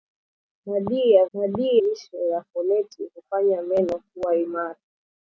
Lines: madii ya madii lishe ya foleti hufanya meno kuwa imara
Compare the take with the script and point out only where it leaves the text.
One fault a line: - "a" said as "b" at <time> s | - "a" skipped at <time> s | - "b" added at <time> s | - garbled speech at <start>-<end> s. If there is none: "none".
none